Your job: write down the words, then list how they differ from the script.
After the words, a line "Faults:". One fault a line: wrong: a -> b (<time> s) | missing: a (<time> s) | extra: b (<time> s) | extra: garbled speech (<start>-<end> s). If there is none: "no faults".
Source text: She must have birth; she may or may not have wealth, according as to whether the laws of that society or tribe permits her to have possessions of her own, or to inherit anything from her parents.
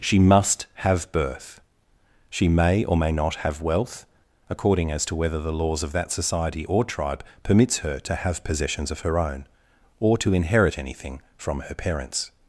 She must have birth; she may or may not have wealth, according as to whether the laws of that society or tribe permits her to have possessions of her own, or to inherit anything from her parents.
Faults:
no faults